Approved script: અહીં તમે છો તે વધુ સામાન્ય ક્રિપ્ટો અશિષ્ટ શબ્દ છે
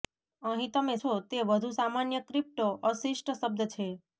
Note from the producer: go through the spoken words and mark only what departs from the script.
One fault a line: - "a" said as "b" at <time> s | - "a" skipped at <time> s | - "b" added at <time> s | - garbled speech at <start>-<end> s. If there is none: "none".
none